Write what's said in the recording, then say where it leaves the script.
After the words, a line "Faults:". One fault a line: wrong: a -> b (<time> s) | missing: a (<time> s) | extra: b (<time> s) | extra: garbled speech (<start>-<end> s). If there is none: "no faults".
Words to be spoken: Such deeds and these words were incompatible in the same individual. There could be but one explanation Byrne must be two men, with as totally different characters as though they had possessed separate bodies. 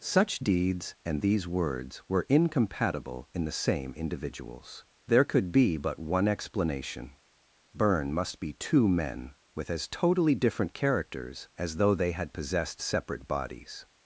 Such deeds and these words were incompatible in the same individuals. There could be but one explanation Byrne must be two men, with as totally different characters as though they had possessed separate bodies.
Faults:
wrong: individual -> individuals (4.0 s)